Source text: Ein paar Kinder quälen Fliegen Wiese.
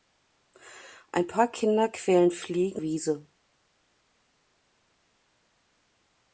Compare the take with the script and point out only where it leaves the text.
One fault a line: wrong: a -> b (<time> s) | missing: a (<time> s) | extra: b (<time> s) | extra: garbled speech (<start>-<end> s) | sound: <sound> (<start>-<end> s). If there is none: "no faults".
no faults